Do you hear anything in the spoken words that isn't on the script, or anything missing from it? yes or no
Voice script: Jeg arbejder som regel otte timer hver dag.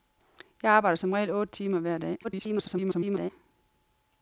yes